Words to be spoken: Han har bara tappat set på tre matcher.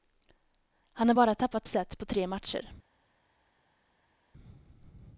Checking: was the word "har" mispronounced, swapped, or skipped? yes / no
no